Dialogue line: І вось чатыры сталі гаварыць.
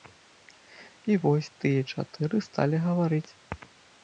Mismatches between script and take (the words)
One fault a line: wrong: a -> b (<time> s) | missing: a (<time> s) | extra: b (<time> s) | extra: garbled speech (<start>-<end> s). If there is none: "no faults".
extra: тыя (1.7 s)